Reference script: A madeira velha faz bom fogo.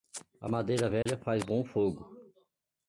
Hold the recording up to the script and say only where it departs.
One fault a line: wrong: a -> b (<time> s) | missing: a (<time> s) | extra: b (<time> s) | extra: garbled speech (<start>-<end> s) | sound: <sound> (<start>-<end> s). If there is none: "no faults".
sound: dropout (1.0-1.1 s)